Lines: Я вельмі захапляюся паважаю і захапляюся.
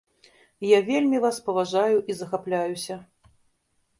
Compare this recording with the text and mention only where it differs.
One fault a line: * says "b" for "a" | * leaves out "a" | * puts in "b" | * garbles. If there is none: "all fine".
* says "вас" for "захапляюся"